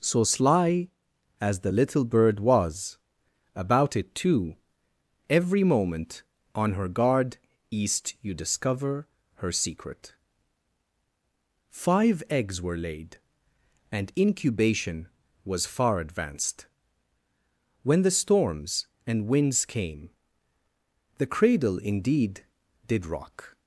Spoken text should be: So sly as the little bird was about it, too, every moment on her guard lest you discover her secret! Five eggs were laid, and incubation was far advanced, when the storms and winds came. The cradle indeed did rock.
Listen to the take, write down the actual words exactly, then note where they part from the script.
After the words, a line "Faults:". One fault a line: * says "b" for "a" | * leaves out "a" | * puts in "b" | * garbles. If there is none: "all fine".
So sly as the little bird was about it, too, every moment on her guard east you discover her secret! Five eggs were laid, and incubation was far advanced, when the storms and winds came. The cradle indeed did rock.
Faults:
* says "east" for "lest"